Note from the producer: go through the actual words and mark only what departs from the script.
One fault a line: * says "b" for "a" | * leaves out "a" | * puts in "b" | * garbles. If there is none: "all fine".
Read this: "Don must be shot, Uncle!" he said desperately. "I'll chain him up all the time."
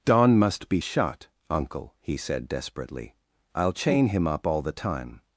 all fine